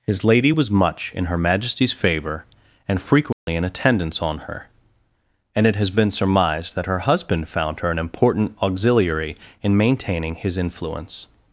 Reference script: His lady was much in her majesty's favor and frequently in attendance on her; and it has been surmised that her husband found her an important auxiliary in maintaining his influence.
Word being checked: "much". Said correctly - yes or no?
yes